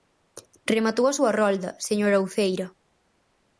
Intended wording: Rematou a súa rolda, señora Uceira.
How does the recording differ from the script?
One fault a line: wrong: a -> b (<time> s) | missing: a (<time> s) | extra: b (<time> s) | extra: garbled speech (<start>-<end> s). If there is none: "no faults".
no faults